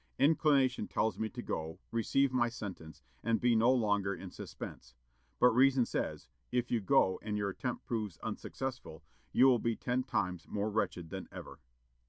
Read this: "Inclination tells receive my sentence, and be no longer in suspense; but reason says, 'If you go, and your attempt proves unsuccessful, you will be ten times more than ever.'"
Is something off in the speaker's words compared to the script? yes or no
yes